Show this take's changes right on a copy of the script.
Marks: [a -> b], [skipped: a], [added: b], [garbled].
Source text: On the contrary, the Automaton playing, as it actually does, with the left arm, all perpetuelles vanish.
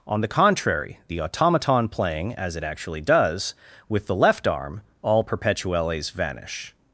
On the contrary, the Automaton playing, as it actually does, with the left arm, all perpetuelles vanish.